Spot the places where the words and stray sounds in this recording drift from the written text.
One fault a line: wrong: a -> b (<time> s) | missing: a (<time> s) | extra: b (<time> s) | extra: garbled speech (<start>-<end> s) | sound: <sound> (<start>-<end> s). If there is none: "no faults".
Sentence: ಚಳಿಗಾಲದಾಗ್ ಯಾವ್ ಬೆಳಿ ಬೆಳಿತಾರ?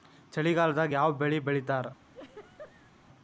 sound: laugh (2.1-2.9 s)